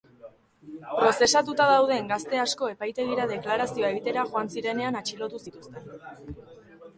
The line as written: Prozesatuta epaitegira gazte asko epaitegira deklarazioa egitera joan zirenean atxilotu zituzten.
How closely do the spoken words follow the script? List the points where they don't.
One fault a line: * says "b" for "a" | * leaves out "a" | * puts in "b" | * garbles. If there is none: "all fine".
* says "dauden" for "epaitegira"